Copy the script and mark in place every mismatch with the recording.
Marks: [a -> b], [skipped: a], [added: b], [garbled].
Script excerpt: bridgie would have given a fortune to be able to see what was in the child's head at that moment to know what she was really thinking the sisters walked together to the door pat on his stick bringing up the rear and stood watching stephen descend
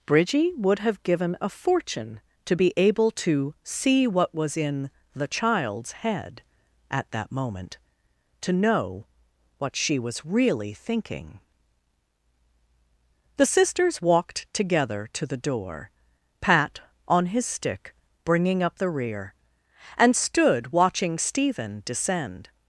bridgie would have given a fortune to be able to see what was in the child's head at that moment to know what she was really thinking the sisters walked together to the door pat on his stick bringing up the rear and stood watching stephen descend